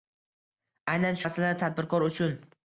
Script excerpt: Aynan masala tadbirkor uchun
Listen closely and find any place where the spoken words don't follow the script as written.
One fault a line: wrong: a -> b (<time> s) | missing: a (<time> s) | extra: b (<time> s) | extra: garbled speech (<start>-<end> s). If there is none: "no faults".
no faults